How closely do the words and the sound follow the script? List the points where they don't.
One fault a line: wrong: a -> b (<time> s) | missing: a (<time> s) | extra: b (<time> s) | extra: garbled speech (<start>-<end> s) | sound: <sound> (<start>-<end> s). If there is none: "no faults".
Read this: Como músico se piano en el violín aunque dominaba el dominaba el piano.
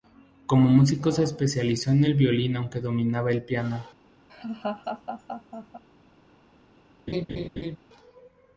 wrong: piano -> especializó (1.2 s)
missing: dominaba el (3.4 s)
sound: laugh (4.3-5.8 s)
sound: laugh (7.1-7.8 s)